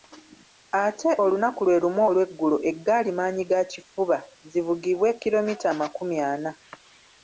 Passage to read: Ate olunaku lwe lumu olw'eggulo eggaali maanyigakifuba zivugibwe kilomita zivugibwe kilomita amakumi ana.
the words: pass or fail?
fail